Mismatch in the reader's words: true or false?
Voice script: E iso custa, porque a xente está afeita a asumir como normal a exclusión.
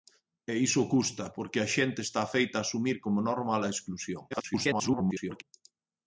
true